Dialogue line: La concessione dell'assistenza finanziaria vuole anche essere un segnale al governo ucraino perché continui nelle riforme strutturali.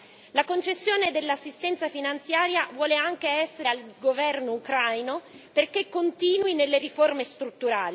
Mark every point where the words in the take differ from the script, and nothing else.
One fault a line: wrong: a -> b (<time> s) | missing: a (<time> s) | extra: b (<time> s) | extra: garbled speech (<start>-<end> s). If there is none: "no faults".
missing: un segnale (3.7 s)